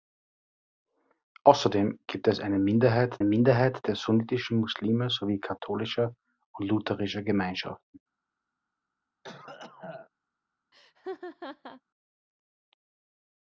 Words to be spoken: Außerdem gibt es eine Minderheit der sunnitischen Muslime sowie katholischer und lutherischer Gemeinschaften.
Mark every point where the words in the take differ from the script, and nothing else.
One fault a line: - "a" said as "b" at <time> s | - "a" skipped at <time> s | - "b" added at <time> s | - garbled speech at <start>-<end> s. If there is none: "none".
- "Minderheit" added at 3.2 s